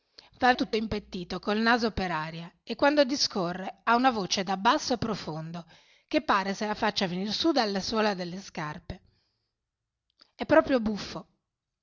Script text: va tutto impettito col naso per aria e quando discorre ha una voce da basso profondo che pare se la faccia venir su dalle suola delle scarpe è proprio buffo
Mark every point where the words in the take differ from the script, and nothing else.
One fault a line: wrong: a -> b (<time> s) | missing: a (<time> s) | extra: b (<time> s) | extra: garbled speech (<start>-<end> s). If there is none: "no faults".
no faults